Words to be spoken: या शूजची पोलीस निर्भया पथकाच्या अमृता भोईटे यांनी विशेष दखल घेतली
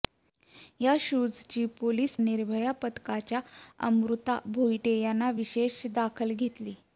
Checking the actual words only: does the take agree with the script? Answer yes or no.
yes